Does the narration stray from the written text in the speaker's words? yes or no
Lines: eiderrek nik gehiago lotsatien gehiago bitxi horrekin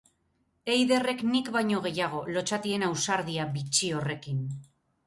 yes